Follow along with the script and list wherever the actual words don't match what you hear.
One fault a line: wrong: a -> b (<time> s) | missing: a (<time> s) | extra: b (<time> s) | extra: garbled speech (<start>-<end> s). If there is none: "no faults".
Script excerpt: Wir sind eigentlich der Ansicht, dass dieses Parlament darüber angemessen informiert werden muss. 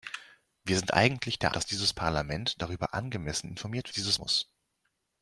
missing: Ansicht (1.5 s)
wrong: werden -> dieses (3.9 s)